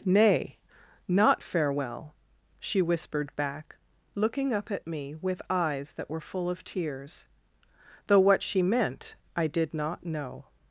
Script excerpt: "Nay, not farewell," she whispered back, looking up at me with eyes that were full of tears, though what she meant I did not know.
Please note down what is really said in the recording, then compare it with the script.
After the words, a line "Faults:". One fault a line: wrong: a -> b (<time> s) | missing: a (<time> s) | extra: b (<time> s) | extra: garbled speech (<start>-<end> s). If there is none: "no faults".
"Nay, not farewell," she whispered back, looking up at me with eyes that were full of tears, though what she meant I did not know.
Faults:
no faults